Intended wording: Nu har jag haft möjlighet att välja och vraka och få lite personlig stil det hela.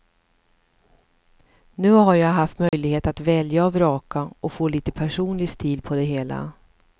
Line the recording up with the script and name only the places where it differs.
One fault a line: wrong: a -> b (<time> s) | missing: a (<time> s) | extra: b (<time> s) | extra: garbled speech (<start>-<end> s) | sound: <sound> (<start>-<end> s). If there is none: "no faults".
sound: dropout (2.7-2.7 s)
extra: på (5.8 s)